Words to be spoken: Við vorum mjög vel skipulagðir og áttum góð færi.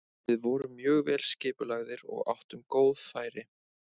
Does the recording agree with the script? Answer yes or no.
yes